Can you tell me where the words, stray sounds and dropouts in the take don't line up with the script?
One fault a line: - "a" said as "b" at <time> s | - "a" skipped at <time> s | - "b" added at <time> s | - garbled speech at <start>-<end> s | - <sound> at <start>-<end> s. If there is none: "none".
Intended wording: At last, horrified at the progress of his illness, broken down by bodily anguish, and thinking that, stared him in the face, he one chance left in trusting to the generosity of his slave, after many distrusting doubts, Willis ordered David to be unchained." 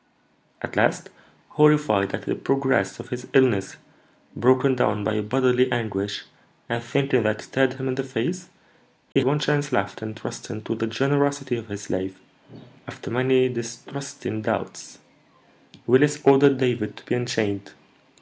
- dropout at 9.1-9.2 s